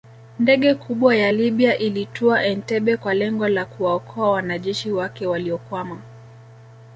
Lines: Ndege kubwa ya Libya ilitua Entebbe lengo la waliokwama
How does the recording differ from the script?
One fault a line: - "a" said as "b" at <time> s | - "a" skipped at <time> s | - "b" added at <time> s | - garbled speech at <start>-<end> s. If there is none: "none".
- "kwa" added at 3.0 s
- "kuwaokoa wanajeshi wake" added at 3.6 s